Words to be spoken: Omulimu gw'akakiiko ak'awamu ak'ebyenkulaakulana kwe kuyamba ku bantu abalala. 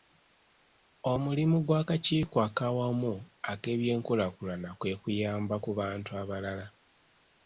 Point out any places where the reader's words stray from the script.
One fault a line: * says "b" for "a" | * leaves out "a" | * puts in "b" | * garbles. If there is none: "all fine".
all fine